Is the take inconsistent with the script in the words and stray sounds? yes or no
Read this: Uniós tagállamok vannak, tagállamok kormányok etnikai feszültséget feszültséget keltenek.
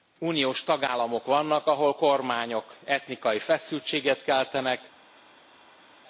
yes